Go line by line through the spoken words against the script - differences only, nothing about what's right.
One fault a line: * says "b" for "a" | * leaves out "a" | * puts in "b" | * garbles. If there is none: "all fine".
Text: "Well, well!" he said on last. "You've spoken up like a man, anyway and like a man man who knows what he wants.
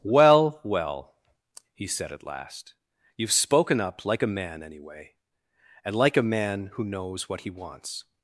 * says "at" for "on"
* leaves out "man"